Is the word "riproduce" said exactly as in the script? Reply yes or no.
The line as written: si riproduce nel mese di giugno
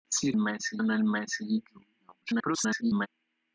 no